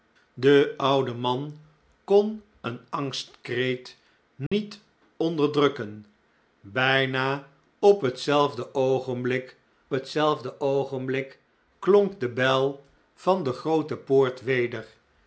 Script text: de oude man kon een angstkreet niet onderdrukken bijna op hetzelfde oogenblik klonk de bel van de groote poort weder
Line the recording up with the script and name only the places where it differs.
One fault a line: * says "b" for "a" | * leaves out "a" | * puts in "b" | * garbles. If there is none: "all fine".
* puts in "hetzelfde oogenblik"